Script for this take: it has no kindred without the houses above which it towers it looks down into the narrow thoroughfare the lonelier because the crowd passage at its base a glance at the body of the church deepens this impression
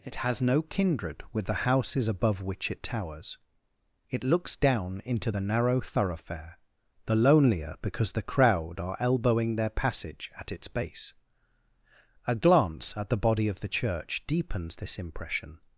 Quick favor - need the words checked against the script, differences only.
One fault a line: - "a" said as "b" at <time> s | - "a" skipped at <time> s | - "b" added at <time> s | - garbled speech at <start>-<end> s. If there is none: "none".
- "without" said as "with" at 1.3 s
- "are elbowing their" added at 8.8 s